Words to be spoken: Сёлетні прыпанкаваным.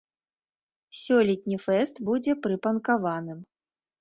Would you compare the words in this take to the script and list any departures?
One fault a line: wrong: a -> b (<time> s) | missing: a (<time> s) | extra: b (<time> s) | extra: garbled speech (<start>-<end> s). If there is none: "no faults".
extra: фэст будзе (1.6 s)